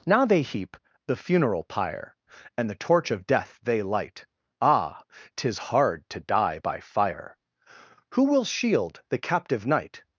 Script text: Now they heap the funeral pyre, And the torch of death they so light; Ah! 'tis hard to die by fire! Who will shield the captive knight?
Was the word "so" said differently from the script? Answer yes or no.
yes